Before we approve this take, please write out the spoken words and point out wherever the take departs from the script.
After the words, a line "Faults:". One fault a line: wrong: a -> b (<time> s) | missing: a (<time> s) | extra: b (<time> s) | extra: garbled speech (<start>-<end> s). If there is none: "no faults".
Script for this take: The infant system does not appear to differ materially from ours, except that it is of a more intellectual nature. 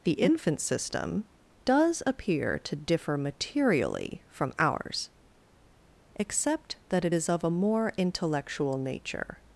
The infant system does appear to differ materially from ours, except that it is of a more intellectual nature.
Faults:
missing: not (2.0 s)